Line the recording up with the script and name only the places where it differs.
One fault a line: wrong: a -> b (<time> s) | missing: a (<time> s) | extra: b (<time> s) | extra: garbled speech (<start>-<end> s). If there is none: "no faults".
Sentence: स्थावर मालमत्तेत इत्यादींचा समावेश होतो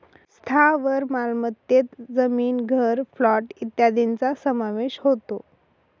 extra: जमीन घर प्लॉट (2.1 s)